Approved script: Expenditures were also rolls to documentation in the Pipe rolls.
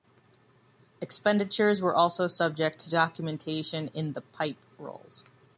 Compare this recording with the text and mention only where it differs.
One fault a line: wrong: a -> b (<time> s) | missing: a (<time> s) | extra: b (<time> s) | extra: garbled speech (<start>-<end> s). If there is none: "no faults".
wrong: rolls -> subject (2.2 s)